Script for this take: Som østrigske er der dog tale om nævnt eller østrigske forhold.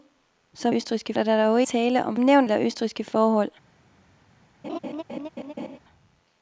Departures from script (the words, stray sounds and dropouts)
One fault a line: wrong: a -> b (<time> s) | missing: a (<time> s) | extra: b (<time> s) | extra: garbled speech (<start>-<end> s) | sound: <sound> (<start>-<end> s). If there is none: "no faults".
sound: laugh (4.6-5.8 s)